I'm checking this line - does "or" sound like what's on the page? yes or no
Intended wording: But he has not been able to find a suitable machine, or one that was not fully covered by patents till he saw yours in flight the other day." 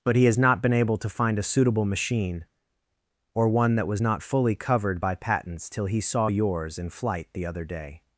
yes